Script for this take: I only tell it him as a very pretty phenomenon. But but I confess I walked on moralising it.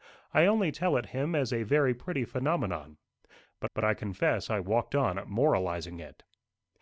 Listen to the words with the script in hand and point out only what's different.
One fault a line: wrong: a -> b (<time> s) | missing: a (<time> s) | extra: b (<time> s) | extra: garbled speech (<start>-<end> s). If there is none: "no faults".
no faults